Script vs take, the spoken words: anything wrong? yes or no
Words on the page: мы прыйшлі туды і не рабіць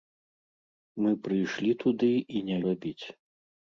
no